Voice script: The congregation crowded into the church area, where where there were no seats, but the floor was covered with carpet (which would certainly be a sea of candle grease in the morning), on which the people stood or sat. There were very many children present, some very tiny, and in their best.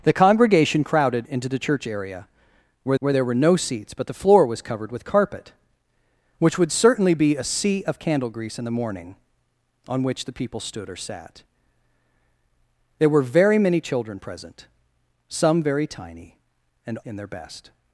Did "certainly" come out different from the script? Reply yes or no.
no